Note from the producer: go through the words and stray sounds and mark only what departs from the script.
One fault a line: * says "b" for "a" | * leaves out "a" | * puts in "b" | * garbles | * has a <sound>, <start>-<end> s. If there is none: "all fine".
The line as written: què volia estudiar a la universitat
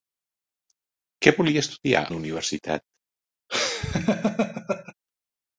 * leaves out "a"
* has a laugh, 3.5-4.9 s